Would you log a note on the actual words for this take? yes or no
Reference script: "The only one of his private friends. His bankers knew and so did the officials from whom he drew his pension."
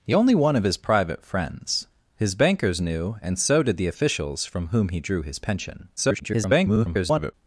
yes